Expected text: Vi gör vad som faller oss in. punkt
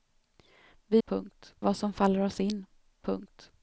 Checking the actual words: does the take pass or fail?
fail